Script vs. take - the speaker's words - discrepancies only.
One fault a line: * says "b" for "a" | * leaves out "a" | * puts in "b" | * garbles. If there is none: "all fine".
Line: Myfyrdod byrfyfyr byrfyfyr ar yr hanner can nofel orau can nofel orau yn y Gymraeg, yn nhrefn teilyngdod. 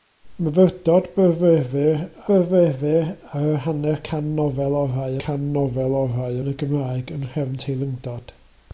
all fine